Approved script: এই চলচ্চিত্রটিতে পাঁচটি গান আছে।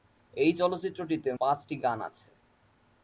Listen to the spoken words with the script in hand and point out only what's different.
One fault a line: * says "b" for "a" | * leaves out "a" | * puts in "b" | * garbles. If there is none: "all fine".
all fine